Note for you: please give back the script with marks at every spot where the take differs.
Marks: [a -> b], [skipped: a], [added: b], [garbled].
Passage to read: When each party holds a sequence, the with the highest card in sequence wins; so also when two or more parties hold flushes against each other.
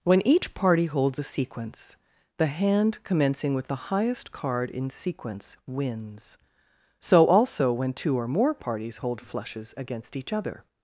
When each party holds a sequence, the [added: hand commencing] with the highest card in sequence wins; so also when two or more parties hold flushes against each other.